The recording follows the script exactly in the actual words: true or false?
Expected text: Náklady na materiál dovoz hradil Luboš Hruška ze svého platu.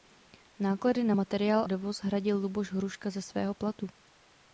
true